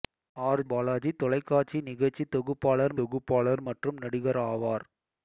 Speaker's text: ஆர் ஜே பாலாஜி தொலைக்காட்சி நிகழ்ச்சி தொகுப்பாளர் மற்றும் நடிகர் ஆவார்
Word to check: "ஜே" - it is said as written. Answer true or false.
false